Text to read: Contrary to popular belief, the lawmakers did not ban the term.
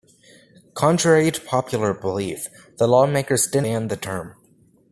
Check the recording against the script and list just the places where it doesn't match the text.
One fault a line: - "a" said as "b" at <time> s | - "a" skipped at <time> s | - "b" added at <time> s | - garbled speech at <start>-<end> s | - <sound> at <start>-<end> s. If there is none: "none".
- "not" skipped at 3.6 s